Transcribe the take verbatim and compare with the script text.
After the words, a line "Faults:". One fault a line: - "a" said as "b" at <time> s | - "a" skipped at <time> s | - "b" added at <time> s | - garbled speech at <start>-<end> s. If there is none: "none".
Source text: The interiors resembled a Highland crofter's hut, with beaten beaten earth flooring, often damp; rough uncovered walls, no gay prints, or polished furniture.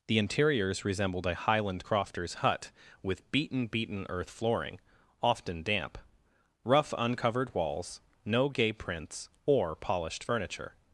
The interiors resembled a Highland crofter's hut, with beaten beaten earth flooring, often damp; rough uncovered walls, no gay prints, or polished furniture.
Faults:
none